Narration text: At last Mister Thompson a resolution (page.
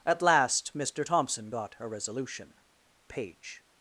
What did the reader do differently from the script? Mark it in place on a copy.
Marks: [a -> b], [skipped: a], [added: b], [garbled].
At last Mister Thompson [added: got] a resolution (page.